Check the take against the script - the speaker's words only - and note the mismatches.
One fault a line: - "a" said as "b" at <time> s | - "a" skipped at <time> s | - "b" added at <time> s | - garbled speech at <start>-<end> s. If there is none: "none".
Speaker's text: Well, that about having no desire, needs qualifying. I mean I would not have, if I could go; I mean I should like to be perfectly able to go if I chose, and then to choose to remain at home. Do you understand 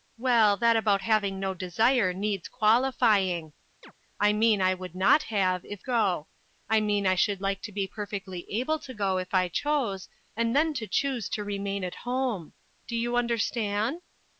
- "I could" skipped at 5.8 s